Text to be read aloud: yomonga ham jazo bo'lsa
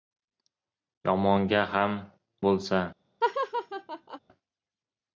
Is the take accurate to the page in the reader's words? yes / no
no